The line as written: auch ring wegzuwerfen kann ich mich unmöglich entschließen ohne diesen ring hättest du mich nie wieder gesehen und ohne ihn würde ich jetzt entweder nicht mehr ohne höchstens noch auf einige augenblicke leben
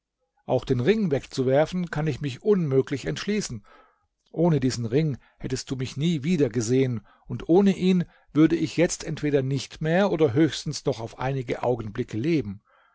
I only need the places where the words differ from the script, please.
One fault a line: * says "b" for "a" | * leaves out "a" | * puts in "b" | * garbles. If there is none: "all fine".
* puts in "den"
* says "oder" for "ohne"